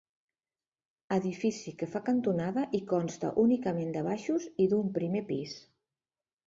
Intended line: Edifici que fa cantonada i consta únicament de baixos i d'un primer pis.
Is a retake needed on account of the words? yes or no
no